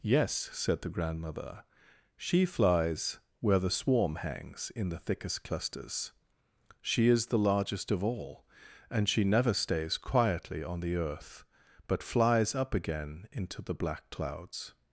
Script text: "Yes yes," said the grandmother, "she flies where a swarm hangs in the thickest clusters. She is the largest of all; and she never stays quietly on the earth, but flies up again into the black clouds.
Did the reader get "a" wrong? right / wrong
wrong